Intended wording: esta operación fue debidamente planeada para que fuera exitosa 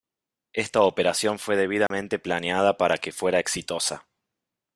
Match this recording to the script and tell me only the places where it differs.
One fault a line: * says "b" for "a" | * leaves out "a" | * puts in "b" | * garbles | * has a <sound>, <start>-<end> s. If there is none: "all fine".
* has a dropout, 1.9-1.9 s